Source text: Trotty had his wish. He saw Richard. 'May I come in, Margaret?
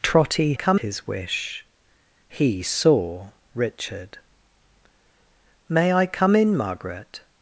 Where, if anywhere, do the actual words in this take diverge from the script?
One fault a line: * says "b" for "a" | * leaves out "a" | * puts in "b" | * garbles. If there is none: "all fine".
* says "come" for "had"